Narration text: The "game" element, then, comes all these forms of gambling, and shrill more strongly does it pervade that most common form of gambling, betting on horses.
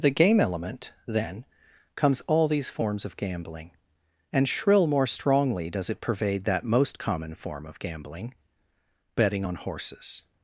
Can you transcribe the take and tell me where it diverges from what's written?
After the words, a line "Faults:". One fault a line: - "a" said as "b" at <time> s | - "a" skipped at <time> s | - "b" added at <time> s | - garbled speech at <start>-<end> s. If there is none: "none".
The "game" element, then, comes all these forms of gambling, and shrill more strongly does it pervade that most common form of gambling, betting on horses.
Faults:
none